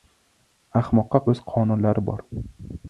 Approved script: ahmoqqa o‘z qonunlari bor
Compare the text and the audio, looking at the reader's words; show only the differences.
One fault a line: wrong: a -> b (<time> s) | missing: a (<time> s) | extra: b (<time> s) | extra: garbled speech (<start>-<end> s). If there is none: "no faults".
no faults